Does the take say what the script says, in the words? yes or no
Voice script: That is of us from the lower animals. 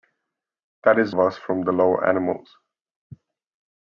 yes